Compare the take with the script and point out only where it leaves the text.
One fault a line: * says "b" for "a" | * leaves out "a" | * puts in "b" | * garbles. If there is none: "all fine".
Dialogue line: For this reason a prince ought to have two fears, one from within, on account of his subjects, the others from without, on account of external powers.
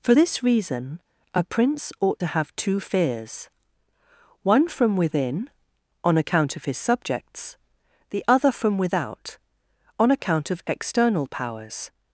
* says "other" for "others"